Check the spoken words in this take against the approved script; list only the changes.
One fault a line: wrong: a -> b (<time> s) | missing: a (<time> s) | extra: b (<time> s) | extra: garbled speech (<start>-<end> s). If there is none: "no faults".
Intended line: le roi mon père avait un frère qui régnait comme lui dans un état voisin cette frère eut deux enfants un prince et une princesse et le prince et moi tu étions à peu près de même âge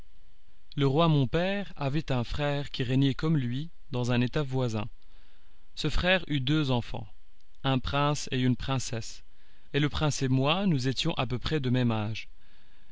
wrong: cette -> ce (5.7 s)
wrong: tu -> nous (10.7 s)